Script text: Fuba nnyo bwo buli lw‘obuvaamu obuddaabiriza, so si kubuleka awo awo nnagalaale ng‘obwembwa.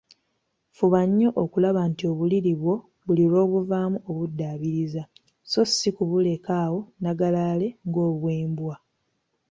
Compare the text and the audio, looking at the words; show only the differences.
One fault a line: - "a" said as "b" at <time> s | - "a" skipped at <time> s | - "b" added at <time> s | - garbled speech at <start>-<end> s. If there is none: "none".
- "okulaba nti obuliri" added at 1.4 s
- "awo" skipped at 6.8 s